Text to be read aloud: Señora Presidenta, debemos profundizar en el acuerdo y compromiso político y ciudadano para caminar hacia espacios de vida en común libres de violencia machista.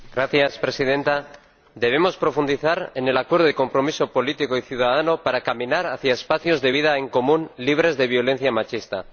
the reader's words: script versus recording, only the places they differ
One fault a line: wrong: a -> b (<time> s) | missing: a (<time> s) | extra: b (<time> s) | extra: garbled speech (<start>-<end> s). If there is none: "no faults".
no faults